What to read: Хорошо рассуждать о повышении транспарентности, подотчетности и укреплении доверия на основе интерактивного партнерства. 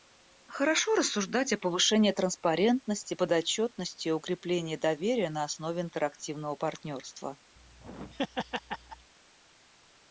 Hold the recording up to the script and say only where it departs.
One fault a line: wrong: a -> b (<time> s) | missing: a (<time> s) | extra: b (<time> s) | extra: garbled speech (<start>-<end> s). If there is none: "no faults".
no faults